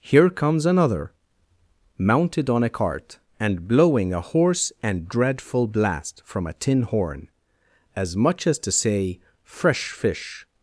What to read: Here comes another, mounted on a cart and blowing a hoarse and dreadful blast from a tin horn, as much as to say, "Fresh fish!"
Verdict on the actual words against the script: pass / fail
pass